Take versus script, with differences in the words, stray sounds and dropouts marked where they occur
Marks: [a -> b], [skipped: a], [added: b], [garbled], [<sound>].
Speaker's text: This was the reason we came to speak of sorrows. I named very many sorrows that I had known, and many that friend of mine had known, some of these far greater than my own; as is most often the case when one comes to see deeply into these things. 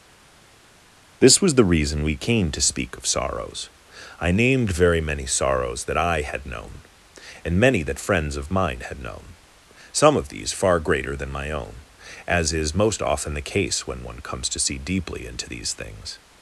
This was the reason we came to speak of sorrows. I named very many sorrows that I had known, and many that [friend -> friends] of mine had known, some of these far greater than my own; as is most often the case when one comes to see deeply into these things.